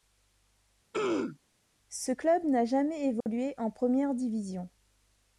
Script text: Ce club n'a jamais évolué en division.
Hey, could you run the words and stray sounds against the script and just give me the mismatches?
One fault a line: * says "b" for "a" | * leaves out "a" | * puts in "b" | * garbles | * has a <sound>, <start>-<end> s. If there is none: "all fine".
* has a throat clearing, 0.9-1.4 s
* has a dropout, 3.2-3.3 s
* puts in "première"